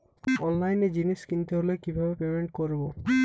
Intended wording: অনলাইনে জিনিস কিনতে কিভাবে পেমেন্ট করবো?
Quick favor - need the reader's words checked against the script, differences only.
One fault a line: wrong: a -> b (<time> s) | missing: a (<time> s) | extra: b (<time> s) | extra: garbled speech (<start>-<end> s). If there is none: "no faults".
extra: হলে (1.6 s)